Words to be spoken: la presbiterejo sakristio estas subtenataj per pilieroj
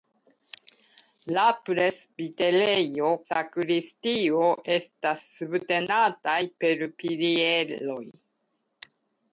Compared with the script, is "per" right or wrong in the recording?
right